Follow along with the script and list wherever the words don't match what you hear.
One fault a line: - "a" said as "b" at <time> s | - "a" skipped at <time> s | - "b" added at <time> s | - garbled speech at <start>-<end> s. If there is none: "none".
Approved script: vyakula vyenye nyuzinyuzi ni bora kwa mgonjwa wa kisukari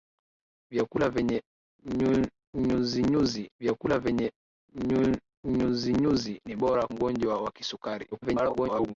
- "vyakula vyenye nyuzinyuzi" added at 3.6 s
- "kwa" skipped at 6.9 s
- garbled speech at 8.1-8.9 s